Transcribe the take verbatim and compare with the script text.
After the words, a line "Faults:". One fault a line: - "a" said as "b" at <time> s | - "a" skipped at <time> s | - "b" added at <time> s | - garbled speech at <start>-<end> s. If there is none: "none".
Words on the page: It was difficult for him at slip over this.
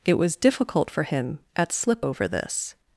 It was difficult for him at slip over this.
Faults:
none